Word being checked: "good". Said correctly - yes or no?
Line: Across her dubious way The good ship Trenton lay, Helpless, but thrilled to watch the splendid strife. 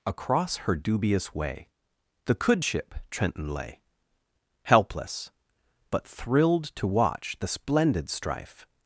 no